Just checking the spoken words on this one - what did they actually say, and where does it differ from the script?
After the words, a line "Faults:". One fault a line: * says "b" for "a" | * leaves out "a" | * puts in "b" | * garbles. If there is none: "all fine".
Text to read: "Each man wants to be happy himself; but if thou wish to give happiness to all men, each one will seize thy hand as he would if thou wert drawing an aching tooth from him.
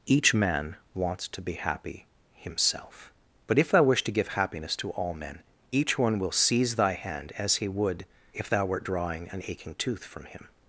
"Each man wants to be happy himself; but if thou wish to give happiness to all men, each one will seize thy hand as he would if thou wert drawing an aching tooth from him.
Faults:
all fine